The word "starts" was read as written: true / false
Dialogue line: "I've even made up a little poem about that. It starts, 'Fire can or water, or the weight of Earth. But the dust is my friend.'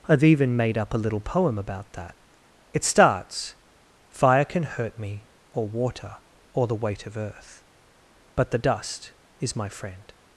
true